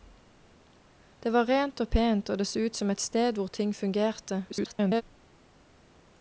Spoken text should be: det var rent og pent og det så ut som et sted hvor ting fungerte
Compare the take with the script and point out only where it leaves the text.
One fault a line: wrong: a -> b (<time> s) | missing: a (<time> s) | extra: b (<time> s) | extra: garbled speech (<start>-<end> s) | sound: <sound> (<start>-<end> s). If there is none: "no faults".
extra: garbled speech (4.5-5.0 s)